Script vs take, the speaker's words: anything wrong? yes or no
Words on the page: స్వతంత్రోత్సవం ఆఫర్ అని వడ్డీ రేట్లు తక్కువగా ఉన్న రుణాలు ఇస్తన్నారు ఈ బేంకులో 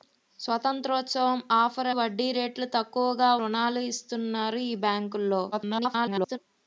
yes